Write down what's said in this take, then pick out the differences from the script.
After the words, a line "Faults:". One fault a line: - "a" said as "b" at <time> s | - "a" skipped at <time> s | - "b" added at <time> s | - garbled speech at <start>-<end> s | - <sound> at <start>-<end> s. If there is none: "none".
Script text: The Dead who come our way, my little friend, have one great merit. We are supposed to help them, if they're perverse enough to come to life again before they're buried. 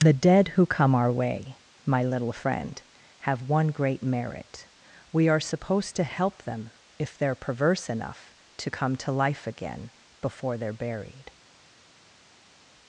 The Dead who come our way, my little friend, have one great merit. We are supposed to help them, if they're perverse enough to come to life again before they're buried.
Faults:
none